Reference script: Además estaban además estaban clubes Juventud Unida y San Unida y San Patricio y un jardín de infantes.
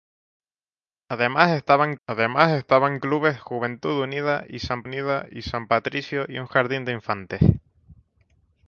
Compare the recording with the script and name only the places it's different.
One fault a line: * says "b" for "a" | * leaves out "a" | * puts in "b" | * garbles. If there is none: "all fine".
all fine